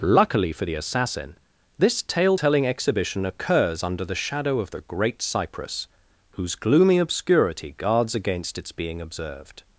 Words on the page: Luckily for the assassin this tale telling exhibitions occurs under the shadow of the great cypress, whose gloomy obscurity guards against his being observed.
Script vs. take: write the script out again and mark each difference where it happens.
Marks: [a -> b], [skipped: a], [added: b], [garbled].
Luckily for the assassin this tale telling [exhibitions -> exhibition] occurs under the shadow of the great cypress, whose gloomy obscurity guards against [his -> its] being observed.